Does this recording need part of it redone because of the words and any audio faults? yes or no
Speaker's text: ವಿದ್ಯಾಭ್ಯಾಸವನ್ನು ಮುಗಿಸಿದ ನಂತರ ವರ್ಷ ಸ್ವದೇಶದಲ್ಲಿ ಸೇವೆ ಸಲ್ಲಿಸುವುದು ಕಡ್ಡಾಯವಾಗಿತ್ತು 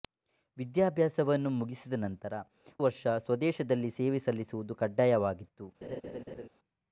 yes